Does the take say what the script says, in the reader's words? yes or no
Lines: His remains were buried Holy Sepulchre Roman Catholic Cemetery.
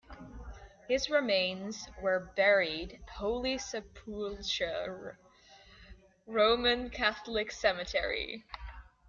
yes